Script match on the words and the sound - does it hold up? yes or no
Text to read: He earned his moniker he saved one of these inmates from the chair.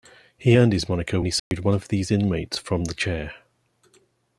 no